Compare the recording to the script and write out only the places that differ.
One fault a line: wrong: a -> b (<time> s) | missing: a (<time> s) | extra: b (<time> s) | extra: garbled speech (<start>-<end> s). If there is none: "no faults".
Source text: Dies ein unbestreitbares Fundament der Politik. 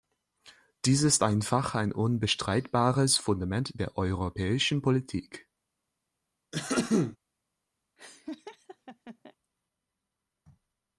extra: ist einfach (1.0 s)
extra: europäischen (4.0 s)